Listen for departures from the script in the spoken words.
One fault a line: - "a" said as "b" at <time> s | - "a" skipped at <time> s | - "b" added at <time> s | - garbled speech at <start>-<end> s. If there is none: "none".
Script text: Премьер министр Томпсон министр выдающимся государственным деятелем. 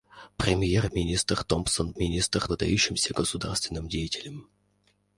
none